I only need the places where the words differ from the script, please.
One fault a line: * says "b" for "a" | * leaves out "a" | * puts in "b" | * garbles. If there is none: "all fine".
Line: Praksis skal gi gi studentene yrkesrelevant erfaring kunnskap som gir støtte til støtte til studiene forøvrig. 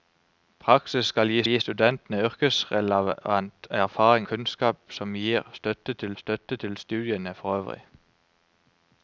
all fine